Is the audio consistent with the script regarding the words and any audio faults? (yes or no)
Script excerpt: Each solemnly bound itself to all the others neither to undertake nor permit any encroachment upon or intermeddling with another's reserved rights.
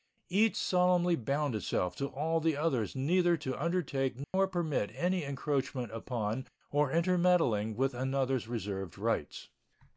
no